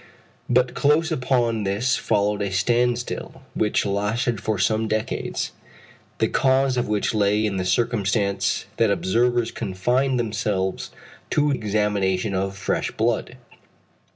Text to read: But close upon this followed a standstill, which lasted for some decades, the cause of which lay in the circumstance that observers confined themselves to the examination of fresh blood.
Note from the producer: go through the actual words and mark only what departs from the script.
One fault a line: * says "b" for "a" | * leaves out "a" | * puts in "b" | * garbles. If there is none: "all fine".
* leaves out "the"